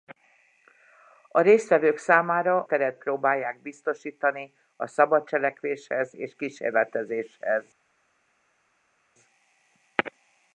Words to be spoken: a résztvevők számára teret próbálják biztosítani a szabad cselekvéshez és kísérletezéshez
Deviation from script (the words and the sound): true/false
false